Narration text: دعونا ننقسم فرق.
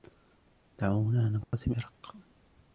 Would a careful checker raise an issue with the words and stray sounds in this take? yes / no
yes